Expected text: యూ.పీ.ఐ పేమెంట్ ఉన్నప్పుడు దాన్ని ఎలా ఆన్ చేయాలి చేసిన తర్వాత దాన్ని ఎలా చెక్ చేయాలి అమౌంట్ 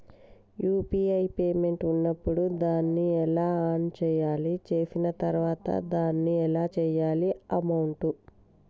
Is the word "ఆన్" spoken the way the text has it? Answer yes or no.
yes